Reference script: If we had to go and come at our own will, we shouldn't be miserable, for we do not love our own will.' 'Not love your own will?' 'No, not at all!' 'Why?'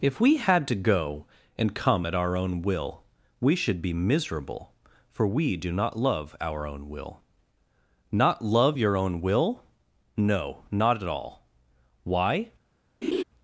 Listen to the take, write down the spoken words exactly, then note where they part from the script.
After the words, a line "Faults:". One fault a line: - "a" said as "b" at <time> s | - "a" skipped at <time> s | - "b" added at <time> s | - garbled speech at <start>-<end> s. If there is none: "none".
If we had to go and come at our own will, we should be miserable, for we do not love our own will.' 'Not love your own will?' 'No, not at all!' 'Why?'
Faults:
- "shouldn't" said as "should" at 3.5 s